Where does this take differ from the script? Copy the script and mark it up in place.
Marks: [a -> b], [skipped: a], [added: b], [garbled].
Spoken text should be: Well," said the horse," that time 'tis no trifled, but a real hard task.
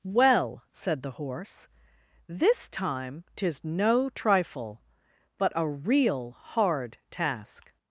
Well," said the horse," [that -> this] time 'tis no [trifled, -> trifle] but a real hard task.